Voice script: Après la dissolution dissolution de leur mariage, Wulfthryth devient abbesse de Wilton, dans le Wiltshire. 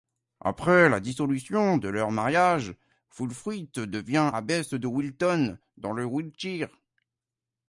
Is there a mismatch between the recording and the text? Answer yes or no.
yes